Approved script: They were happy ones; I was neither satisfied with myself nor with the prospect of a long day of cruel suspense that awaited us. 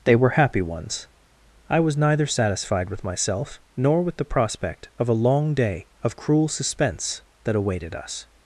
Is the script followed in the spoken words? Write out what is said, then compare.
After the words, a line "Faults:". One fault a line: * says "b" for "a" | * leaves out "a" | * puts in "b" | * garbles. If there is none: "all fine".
They were happy ones; I was neither satisfied with myself nor with the prospect of a long day of cruel suspense that awaited us.
Faults:
all fine